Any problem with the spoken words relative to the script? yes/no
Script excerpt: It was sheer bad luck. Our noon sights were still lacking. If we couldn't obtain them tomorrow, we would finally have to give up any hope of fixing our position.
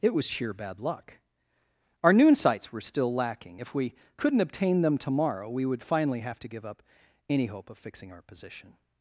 no